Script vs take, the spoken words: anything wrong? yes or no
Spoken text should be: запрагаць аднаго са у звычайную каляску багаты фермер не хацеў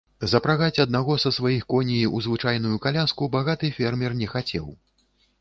yes